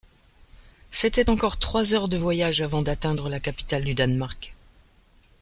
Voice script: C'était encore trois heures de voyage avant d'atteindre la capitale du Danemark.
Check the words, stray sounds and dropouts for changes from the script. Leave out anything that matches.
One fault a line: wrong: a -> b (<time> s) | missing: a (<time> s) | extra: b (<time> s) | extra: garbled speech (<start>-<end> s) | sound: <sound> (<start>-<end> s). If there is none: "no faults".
no faults